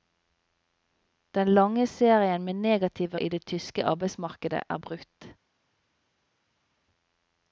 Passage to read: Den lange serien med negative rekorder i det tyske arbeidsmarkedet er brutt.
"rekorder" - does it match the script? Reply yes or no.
no